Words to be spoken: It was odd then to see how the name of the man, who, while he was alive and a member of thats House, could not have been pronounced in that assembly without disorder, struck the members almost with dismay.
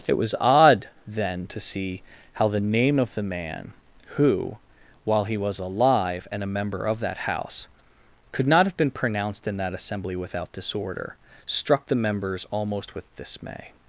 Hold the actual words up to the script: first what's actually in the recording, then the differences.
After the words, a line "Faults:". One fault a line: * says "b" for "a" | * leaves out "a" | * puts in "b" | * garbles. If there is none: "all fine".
It was odd then to see how the name of the man, who, while he was alive and a member of that House, could not have been pronounced in that assembly without disorder, struck the members almost with dismay.
Faults:
* says "that" for "thats"